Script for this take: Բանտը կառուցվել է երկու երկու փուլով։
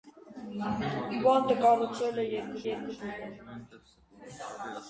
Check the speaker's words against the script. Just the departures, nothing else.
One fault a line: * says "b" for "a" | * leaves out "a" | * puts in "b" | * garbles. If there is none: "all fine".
all fine